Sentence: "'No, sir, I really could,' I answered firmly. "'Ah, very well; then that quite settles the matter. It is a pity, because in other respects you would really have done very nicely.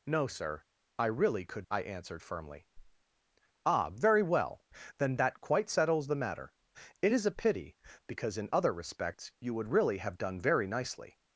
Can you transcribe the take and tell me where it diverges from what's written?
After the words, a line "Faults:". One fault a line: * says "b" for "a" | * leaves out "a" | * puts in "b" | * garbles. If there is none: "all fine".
"'No, sir, I really could,' I answered firmly. "'Ah, very well; then that quite settles the matter. It is a pity, because in other respects you would really have done very nicely.
Faults:
all fine